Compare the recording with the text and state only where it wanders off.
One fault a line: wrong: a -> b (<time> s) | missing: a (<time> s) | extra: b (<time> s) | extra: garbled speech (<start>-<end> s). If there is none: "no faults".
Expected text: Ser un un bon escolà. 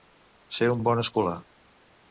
no faults